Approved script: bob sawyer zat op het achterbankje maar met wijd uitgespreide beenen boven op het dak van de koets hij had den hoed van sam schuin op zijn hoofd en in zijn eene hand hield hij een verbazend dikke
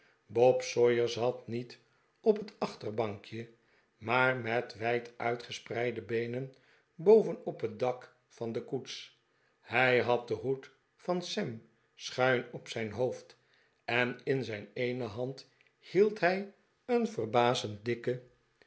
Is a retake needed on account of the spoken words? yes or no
yes